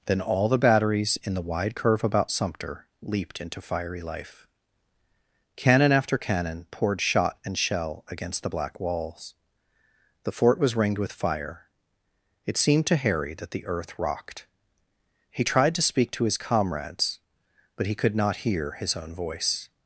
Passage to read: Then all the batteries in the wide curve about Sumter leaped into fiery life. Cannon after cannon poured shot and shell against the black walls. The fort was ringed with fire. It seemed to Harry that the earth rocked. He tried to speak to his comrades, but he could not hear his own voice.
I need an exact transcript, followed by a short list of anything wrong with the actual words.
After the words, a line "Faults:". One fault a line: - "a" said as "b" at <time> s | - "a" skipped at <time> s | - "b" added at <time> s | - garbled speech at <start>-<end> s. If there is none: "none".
Then all the batteries in the wide curve about Sumter leaped into fiery life. Cannon after cannon poured shot and shell against the black walls. The fort was ringed with fire. It seemed to Harry that the earth rocked. He tried to speak to his comrades, but he could not hear his own voice.
Faults:
none